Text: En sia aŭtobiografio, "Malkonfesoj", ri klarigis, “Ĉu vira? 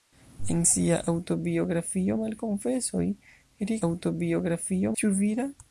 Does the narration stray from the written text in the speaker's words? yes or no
yes